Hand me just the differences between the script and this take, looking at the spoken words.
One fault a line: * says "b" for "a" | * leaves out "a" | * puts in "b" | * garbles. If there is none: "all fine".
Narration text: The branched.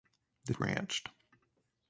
all fine